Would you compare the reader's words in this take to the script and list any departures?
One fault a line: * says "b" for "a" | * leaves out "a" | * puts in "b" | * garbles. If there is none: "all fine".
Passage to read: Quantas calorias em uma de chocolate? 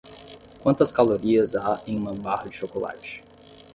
* puts in "há"
* puts in "barra"